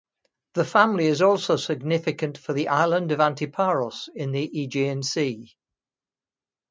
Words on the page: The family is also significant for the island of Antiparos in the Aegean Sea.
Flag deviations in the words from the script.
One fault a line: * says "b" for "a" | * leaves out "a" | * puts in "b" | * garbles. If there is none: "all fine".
all fine